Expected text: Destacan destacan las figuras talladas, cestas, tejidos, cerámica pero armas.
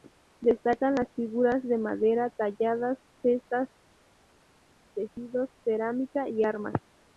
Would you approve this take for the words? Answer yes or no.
no